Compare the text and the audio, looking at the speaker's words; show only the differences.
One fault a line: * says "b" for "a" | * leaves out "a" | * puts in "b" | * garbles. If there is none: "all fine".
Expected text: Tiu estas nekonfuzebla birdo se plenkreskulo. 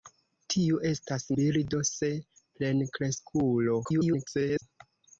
* leaves out "nekonfuzebla"
* garbles